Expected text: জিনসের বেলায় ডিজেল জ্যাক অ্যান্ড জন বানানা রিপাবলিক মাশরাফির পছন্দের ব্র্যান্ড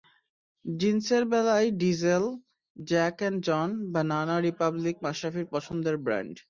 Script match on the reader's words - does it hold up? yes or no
yes